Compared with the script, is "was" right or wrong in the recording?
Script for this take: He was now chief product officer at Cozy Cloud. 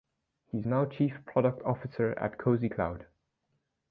wrong